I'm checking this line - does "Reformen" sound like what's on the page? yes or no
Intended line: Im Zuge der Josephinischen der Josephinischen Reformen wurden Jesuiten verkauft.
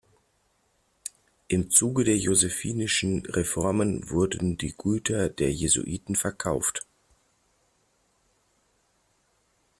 no